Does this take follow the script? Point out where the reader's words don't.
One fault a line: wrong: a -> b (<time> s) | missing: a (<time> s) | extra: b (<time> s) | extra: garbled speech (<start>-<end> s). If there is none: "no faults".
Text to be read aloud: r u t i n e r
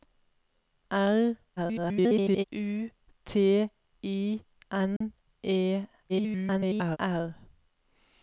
extra: garbled speech (1.6-2.4 s)
extra: garbled speech (6.1-7.0 s)